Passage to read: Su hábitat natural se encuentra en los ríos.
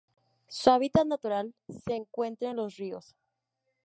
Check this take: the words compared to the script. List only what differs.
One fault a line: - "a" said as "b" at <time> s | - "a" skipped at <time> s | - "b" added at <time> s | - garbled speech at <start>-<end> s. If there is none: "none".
none